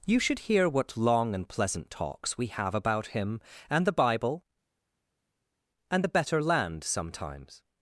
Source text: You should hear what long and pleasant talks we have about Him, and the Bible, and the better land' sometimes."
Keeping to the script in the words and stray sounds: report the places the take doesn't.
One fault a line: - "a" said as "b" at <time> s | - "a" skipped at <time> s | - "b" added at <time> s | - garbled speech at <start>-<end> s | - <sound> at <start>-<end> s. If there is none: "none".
none